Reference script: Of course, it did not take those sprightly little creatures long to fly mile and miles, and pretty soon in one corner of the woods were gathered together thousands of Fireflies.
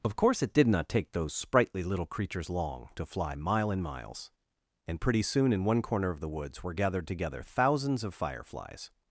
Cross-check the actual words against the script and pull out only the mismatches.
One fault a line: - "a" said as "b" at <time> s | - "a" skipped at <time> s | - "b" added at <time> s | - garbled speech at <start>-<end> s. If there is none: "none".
none